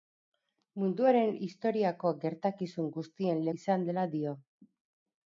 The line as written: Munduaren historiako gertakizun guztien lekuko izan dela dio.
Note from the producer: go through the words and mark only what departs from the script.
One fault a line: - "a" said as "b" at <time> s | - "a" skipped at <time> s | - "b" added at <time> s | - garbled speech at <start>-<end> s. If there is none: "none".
- "lekuko" skipped at 3.5 s